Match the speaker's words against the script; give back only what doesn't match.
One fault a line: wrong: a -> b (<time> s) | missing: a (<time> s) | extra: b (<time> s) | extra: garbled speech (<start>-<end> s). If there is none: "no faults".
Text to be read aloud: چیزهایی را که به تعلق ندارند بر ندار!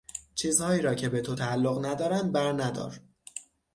extra: تو (1.2 s)